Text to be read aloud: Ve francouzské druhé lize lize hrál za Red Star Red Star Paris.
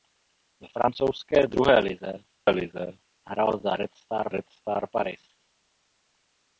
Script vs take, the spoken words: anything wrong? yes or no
no